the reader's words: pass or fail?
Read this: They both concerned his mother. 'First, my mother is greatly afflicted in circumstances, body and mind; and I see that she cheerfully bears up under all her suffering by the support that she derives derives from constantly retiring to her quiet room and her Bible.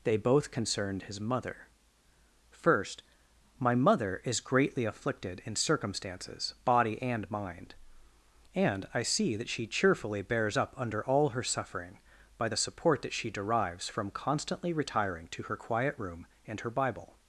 fail